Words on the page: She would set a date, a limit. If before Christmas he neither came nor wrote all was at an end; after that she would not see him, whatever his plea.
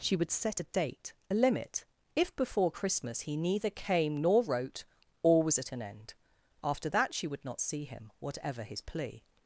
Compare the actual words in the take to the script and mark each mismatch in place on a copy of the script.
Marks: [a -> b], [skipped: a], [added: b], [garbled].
She would set a date, a limit. If before Christmas he neither came nor wrote all was at an end; after that she would not see him, whatever his plea.